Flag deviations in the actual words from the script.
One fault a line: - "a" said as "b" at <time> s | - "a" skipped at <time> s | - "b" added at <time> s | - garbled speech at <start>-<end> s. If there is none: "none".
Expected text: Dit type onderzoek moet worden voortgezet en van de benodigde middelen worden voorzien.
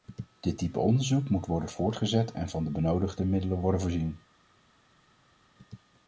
none